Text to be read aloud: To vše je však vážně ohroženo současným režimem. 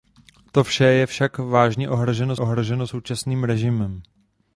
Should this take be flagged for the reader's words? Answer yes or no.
yes